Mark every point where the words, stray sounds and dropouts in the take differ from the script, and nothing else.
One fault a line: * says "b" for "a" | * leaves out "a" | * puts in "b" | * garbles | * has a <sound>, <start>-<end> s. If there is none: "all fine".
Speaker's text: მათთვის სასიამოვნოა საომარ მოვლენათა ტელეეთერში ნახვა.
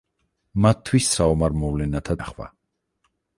* leaves out "სასიამოვნოა"
* leaves out "ტელეეთერში"